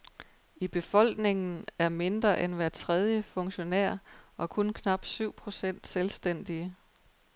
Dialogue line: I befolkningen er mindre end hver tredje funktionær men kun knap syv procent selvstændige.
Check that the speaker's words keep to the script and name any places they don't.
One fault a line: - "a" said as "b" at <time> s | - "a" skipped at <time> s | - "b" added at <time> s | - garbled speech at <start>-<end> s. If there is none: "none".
- "men" said as "og" at 4.4 s